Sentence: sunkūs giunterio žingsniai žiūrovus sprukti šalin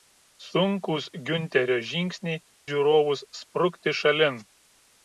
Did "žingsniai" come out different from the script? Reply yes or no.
no